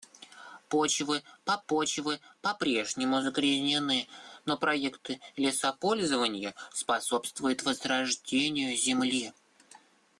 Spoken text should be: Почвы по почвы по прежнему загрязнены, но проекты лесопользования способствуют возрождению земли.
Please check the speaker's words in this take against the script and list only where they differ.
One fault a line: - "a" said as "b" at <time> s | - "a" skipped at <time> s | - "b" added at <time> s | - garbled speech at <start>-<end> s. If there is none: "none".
none